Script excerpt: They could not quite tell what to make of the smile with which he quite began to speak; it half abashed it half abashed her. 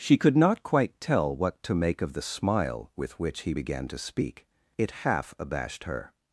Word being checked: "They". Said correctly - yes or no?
no